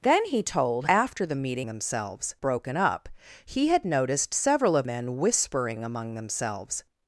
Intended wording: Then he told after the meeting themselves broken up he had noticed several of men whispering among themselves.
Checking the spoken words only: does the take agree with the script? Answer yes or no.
yes